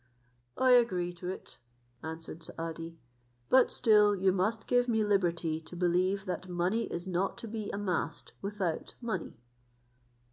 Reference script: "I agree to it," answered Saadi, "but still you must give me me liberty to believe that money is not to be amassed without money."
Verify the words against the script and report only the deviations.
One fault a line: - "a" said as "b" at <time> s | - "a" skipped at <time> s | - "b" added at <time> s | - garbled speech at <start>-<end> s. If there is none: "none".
- "me" skipped at 5.0 s